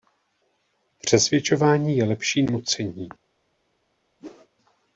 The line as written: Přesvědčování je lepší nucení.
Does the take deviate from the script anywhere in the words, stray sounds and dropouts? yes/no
yes